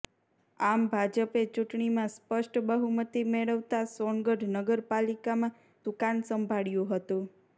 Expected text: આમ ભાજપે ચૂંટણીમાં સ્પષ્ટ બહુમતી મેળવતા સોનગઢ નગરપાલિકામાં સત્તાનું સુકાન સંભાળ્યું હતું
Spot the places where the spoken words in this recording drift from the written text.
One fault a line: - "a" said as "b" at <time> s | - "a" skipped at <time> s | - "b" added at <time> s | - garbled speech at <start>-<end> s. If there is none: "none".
- "સત્તાનું" skipped at 5.5 s